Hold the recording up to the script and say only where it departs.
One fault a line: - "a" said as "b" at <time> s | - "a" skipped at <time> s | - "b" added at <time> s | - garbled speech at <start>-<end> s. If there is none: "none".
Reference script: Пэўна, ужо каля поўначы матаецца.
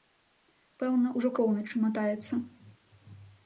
- "каля" skipped at 1.3 s